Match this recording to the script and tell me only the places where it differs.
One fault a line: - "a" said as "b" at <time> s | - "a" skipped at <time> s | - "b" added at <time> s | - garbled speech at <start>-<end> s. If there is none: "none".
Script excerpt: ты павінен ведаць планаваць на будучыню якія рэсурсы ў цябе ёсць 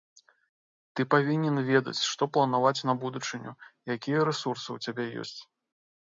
- "што" added at 2.1 s